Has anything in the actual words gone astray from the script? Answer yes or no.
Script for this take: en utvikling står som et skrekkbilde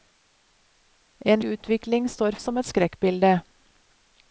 no